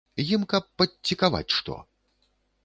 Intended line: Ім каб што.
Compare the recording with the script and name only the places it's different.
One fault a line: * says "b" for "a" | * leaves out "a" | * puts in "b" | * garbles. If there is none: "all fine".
* puts in "падцікаваць"